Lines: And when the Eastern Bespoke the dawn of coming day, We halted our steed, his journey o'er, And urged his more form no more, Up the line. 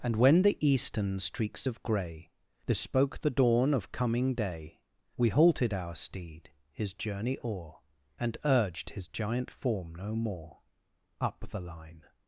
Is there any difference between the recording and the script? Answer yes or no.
yes